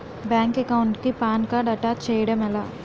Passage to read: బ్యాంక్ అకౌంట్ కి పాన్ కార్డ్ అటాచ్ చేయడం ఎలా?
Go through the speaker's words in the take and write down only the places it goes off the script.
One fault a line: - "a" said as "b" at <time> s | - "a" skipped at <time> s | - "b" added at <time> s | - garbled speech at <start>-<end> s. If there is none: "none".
none